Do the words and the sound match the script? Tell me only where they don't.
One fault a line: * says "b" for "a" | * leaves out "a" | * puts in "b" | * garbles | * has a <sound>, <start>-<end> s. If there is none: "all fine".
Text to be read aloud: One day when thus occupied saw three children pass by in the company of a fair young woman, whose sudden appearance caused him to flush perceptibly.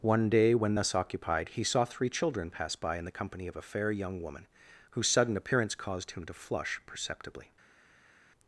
* puts in "he"